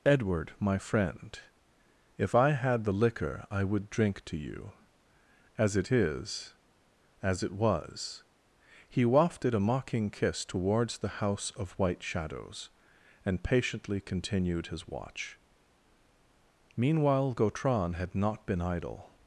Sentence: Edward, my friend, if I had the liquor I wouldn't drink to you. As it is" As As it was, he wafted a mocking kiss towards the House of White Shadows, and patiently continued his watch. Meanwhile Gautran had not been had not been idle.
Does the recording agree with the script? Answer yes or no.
no